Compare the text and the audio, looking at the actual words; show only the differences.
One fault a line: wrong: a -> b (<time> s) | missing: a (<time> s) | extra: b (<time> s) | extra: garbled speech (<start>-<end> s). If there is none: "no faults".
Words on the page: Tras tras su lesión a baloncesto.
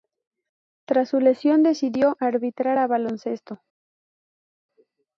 missing: tras (1.1 s)
extra: decidió arbitrar (1.6 s)